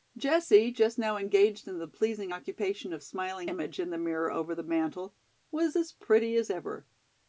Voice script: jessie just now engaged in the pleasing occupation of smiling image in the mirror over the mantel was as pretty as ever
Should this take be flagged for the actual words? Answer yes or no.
no